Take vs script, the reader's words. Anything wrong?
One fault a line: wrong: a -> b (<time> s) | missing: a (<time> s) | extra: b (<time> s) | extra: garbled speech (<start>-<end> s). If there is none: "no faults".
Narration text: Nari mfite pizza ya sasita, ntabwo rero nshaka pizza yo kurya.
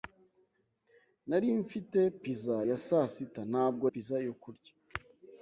missing: rero nshaka (3.8 s)